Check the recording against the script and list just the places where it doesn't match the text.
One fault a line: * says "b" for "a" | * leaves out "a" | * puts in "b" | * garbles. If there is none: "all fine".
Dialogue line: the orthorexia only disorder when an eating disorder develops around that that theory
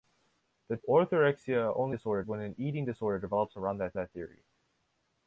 all fine